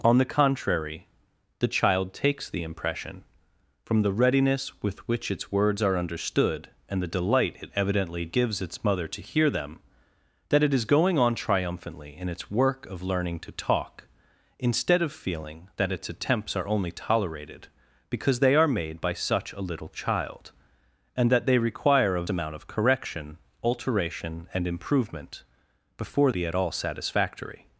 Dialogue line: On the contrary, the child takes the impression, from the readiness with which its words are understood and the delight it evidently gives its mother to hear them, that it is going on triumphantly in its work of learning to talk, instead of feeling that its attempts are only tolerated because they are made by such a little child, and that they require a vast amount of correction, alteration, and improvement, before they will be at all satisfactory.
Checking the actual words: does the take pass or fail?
fail